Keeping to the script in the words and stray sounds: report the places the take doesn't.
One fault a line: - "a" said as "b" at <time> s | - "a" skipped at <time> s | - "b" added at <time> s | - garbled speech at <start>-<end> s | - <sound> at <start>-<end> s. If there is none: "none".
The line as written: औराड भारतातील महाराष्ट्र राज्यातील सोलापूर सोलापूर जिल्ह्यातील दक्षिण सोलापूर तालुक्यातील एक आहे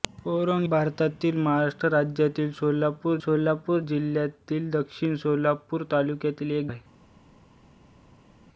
none